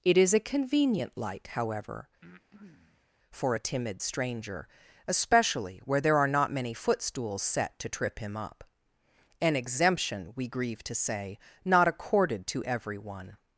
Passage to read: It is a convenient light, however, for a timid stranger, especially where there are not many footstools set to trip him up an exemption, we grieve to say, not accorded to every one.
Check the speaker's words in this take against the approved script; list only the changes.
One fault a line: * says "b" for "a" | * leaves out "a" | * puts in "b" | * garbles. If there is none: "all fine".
all fine